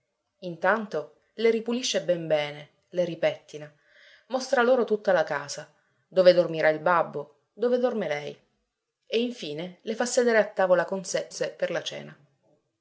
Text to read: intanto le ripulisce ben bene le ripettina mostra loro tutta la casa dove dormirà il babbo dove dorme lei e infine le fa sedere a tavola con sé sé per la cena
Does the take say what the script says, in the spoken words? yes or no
yes